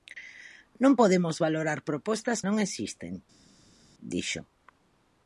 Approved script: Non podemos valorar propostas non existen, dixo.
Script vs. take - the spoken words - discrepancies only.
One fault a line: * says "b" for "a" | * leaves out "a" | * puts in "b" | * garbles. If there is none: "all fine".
all fine